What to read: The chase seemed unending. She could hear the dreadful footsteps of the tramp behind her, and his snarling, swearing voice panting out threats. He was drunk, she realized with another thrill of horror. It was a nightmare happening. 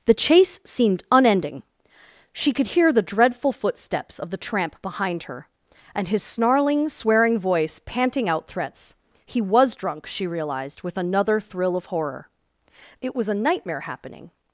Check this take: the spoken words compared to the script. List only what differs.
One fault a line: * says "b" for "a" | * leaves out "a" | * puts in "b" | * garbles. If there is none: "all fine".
all fine